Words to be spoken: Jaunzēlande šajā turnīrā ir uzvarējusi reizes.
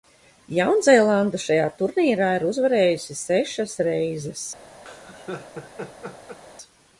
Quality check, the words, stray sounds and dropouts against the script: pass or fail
fail